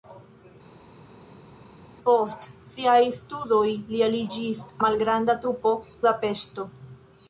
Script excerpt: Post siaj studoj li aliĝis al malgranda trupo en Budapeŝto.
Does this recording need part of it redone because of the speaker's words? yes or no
yes